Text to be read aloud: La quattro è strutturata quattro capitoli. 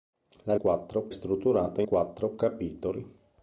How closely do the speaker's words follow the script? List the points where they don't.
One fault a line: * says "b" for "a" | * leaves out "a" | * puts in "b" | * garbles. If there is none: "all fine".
all fine